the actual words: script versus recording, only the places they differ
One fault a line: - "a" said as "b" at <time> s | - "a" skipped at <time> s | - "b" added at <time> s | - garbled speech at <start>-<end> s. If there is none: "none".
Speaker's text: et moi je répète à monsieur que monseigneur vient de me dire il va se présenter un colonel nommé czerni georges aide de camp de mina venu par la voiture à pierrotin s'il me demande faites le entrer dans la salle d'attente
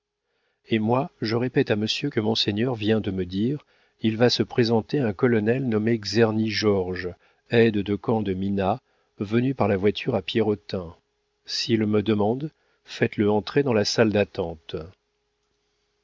none